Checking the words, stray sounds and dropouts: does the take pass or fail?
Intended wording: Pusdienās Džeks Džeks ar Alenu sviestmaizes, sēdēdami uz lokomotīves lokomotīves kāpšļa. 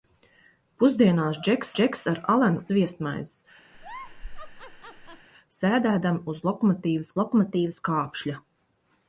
fail